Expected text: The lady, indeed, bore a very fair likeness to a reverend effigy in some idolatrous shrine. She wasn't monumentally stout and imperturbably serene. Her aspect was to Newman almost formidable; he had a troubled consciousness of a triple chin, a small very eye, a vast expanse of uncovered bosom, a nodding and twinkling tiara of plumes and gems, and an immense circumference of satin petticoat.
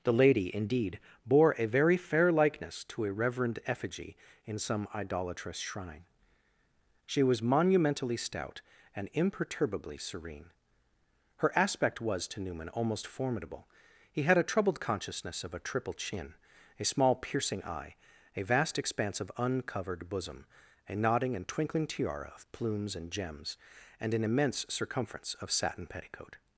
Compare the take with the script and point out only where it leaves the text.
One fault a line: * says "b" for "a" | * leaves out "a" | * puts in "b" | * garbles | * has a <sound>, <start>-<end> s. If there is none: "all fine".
* says "was" for "wasn't"
* says "piercing" for "very"